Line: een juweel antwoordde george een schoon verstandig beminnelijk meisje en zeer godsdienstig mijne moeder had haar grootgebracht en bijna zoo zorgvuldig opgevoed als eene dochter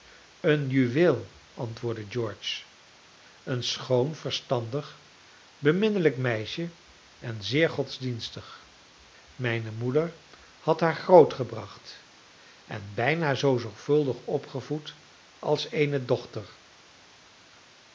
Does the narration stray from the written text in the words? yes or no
no